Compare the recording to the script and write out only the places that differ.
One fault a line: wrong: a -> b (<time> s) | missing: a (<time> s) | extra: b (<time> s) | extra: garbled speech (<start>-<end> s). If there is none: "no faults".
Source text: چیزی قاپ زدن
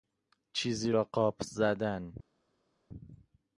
extra: را (0.9 s)